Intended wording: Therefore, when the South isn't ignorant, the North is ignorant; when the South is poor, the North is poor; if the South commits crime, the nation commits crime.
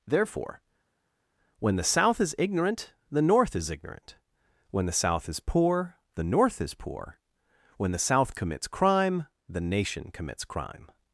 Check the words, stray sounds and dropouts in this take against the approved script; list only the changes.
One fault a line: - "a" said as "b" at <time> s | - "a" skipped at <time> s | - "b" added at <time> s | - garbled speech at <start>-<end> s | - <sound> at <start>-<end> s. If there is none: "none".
- "isn't" said as "is" at 2.2 s
- "if" said as "when" at 7.8 s